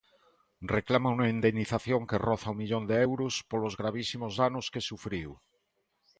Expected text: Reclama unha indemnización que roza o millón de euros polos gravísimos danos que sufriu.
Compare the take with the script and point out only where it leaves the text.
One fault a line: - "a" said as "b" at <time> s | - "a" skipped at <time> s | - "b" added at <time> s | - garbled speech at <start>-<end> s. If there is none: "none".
none